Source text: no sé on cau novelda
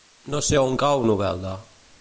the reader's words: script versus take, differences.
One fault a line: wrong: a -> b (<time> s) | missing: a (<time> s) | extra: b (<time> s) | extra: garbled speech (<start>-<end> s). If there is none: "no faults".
no faults